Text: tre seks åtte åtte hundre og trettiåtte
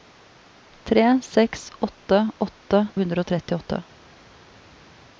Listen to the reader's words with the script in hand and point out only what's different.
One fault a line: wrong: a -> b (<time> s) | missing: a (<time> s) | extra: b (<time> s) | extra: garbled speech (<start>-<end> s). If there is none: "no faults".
no faults